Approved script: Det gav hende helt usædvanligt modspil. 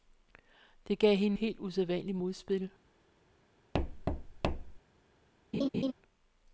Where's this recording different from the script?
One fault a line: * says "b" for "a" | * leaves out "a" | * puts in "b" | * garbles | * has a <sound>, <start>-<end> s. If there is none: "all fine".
* has a thud, 3.7-4.8 s
* has a laugh, 5.5-5.9 s